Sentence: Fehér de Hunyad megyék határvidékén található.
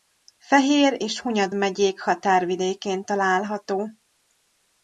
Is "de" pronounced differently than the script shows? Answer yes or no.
yes